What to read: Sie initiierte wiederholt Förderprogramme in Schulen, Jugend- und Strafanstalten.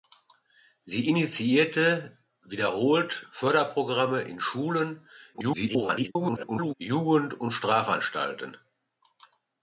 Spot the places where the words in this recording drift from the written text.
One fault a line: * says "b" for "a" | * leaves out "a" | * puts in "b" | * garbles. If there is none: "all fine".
* garbles